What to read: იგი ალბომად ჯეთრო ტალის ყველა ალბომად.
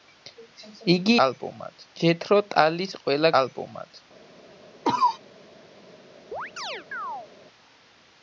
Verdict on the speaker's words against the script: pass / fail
pass